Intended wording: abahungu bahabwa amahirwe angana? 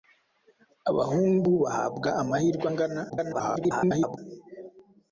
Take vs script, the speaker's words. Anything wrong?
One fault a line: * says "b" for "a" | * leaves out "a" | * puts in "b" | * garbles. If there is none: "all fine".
* garbles